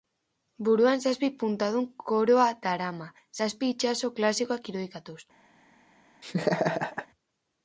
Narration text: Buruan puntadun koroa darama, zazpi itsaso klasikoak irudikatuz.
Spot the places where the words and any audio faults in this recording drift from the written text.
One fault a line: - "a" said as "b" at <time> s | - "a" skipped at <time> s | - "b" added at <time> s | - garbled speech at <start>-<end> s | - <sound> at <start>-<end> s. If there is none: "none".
- "zazpi" added at 1.1 s
- laugh at 6.2-7.1 s